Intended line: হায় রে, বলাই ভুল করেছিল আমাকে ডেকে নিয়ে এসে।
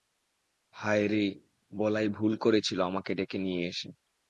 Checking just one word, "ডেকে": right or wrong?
right